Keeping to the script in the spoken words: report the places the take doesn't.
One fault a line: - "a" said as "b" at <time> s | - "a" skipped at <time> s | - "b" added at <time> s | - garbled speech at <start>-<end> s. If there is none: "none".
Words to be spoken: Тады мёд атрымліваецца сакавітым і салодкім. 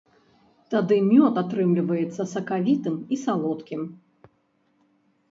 none